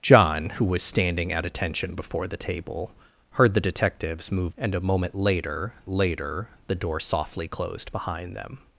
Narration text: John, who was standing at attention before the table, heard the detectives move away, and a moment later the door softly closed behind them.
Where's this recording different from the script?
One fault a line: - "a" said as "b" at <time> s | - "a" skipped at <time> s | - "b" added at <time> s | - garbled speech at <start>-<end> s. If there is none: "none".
- "away" skipped at 4.5 s
- "later" added at 5.9 s